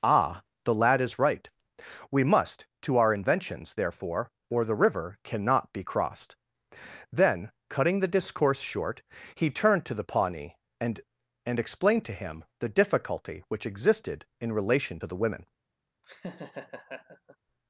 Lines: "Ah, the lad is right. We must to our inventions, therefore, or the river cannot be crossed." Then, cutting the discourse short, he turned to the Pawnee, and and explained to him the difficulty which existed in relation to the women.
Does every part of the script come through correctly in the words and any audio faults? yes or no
no